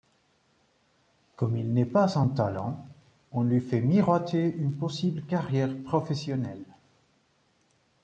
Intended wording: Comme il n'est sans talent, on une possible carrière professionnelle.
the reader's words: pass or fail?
fail